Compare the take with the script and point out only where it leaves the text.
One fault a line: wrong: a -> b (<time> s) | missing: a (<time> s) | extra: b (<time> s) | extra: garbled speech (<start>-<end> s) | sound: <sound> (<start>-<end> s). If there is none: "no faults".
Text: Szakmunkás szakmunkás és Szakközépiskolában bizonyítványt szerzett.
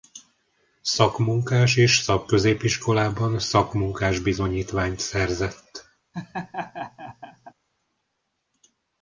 missing: szakmunkás (1.8 s)
extra: szakmunkás (3.4 s)
sound: laugh (6.1-7.5 s)